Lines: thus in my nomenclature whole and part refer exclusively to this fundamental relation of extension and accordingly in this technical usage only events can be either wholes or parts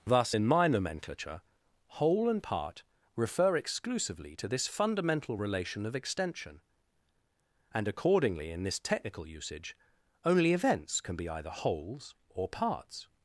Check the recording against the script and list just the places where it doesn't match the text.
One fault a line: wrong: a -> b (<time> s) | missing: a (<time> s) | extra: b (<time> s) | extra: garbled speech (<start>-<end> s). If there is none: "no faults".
no faults